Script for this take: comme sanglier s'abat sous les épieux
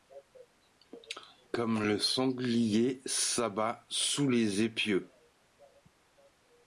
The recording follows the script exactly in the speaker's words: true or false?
false